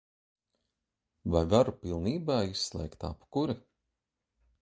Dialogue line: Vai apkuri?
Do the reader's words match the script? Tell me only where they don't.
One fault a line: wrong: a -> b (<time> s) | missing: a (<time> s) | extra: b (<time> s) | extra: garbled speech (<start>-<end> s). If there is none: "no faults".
extra: varu pilnībā izslēgt (1.5 s)